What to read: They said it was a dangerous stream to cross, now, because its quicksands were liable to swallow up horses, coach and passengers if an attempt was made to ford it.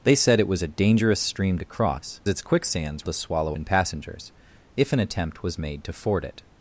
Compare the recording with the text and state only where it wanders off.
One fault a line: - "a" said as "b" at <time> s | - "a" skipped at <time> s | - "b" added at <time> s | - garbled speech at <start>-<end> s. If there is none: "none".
- "now because" skipped at 2.2 s
- "were liable" skipped at 3.1 s
- "up horses coach" skipped at 3.6 s